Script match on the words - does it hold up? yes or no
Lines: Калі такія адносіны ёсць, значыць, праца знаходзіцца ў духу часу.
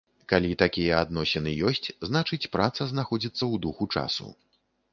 yes